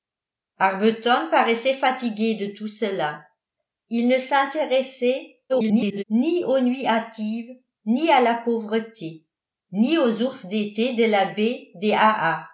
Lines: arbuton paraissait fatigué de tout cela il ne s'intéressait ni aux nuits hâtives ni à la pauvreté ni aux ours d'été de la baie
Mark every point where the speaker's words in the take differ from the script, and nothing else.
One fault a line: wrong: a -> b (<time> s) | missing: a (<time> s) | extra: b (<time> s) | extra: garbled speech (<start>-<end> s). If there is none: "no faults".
extra: garbled speech (5.5-6.0 s)